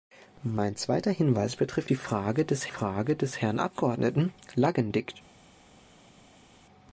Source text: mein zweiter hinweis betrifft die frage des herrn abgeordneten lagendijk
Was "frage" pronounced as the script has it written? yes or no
yes